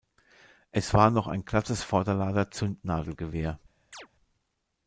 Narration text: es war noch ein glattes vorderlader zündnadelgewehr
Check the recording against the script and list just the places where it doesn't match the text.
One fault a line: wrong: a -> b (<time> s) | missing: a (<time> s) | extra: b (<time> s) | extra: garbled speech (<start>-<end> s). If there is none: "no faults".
no faults